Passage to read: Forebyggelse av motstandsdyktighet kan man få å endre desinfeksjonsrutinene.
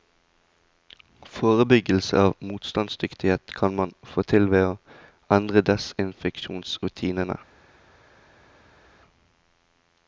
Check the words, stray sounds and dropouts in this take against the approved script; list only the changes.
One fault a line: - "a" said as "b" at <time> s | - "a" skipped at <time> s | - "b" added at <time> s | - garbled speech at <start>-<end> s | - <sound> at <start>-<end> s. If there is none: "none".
- "til ved" added at 4.3 s